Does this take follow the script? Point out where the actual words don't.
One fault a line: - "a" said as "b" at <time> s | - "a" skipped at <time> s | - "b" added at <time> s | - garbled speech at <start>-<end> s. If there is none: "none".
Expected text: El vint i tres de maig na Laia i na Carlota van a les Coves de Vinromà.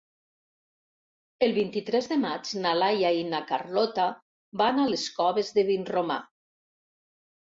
none